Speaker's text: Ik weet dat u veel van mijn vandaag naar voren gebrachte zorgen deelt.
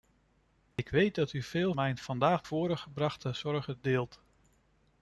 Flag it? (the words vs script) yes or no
yes